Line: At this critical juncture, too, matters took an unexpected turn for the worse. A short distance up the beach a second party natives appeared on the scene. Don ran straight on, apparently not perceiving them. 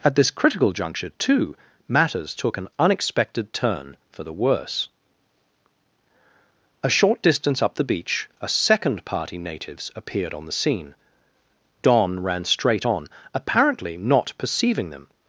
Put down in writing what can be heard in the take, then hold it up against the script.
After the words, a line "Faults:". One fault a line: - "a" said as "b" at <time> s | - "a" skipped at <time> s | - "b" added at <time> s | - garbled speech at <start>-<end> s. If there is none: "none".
At this critical juncture, too, matters took an unexpected turn for the worse. A short distance up the beach a second party natives appeared on the scene. Don ran straight on, apparently not perceiving them.
Faults:
none